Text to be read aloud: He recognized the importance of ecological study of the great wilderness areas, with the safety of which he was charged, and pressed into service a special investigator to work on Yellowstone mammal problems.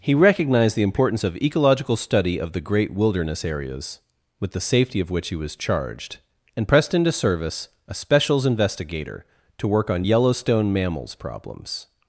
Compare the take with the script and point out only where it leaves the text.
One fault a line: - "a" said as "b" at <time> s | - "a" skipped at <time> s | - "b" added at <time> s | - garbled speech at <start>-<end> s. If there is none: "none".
- "special" said as "specials" at 7.9 s
- "mammal" said as "mammals" at 10.7 s